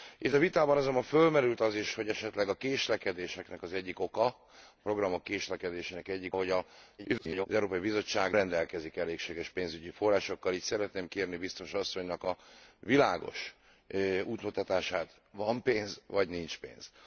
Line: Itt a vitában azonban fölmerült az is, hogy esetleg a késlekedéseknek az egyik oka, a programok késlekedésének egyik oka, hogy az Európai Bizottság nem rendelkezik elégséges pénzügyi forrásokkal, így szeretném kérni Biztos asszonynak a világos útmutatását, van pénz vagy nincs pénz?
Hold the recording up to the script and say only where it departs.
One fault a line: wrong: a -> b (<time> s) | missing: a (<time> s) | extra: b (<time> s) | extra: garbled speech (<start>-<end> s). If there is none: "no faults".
missing: oka (6.3 s)
extra: garbled speech (7.0-7.5 s)
missing: nem (8.3 s)